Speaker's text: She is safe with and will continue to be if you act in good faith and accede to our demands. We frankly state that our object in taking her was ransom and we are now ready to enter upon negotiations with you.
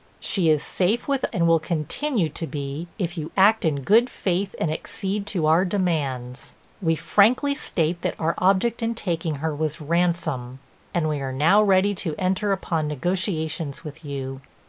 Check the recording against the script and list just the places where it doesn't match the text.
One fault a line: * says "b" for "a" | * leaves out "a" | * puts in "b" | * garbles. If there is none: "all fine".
all fine